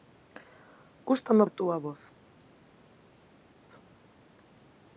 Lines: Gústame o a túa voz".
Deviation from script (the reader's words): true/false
false